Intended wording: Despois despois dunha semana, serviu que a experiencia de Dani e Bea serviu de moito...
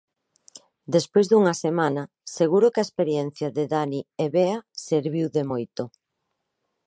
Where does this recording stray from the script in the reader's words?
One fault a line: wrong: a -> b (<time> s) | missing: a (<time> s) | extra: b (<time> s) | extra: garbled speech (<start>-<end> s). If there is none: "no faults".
missing: despois (1.2 s)
wrong: serviu -> seguro (2.4 s)